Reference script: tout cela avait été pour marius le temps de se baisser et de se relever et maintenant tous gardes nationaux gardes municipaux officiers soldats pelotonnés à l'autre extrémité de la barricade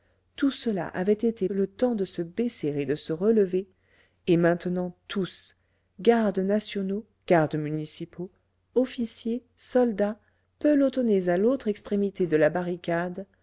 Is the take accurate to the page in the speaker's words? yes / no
no